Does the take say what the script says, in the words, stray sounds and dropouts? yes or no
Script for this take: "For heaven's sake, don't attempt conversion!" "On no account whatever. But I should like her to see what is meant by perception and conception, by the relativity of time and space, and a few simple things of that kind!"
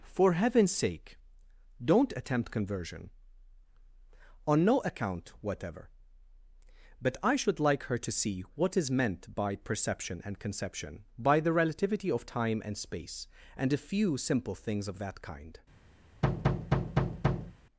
no